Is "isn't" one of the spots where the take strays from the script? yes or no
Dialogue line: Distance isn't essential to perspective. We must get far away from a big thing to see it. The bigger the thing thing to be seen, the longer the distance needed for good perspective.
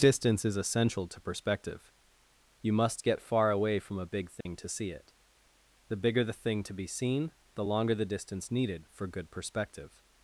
yes